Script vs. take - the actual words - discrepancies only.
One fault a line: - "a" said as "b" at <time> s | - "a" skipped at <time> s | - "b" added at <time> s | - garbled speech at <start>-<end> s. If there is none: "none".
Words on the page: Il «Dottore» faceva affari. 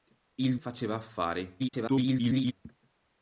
- "Dottore" skipped at 0.6 s
- garbled speech at 1.6-2.5 s